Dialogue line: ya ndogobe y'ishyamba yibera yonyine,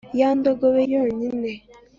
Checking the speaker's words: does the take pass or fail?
fail